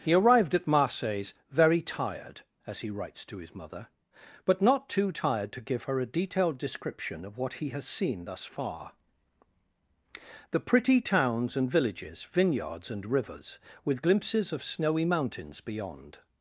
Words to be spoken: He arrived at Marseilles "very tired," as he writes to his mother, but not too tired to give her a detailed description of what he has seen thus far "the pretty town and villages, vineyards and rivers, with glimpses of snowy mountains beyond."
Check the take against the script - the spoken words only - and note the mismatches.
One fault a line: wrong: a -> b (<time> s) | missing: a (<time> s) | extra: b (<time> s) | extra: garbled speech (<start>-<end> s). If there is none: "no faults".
wrong: town -> towns (11.0 s)